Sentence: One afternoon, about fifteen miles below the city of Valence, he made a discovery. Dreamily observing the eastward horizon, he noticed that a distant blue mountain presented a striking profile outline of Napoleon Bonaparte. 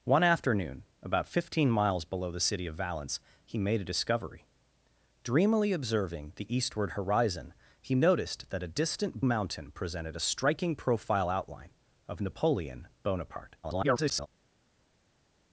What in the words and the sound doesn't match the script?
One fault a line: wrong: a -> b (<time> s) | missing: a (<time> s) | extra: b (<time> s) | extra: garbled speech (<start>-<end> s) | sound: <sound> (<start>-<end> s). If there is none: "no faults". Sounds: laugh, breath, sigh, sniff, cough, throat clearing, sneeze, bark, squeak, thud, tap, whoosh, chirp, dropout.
missing: blue (9.2 s)
extra: garbled speech (13.6-14.3 s)